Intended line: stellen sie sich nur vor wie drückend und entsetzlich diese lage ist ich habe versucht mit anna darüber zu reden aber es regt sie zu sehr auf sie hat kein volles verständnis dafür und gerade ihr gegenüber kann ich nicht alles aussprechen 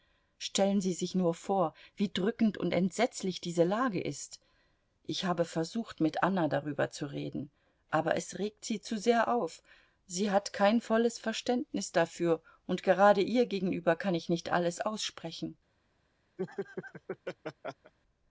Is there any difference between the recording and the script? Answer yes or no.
no